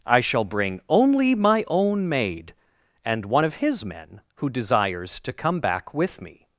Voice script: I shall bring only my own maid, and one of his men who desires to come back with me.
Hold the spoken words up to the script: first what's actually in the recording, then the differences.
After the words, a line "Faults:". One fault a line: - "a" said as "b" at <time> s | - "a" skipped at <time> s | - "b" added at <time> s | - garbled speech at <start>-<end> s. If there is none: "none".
I shall bring only my own maid, and one of his men who desires to come back with me.
Faults:
none